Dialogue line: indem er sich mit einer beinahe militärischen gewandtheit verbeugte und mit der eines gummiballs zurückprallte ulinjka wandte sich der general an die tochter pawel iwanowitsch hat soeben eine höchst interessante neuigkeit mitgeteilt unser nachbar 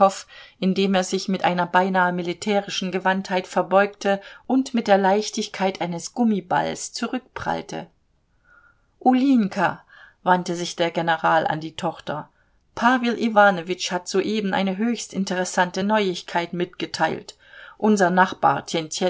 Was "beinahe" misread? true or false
false